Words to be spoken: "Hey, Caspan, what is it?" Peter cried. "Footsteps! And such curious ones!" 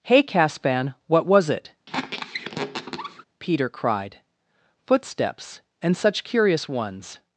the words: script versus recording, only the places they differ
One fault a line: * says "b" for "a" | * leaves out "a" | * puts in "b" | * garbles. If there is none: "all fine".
* says "was" for "is"